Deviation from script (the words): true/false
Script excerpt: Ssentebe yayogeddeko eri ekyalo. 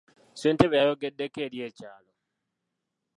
false